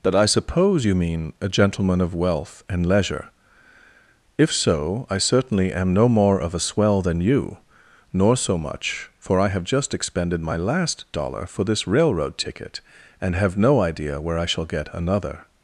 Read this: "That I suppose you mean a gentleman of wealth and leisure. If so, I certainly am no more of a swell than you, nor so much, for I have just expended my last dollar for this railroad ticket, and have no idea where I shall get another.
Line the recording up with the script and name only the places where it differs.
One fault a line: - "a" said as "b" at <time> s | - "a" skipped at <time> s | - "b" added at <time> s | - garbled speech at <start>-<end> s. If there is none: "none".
none